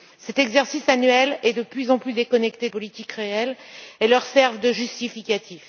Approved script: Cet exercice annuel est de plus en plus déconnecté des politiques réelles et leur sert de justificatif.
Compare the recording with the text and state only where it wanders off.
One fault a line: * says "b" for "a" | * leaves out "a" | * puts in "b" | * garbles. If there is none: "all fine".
* leaves out "des"